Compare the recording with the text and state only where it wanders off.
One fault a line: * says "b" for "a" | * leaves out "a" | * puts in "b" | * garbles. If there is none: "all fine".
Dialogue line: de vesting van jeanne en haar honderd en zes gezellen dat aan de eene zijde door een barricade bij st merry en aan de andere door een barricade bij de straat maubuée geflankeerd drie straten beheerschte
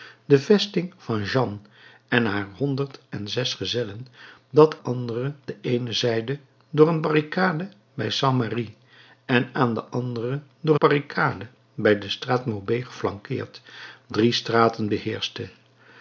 * says "andere" for "aan"
* leaves out "een"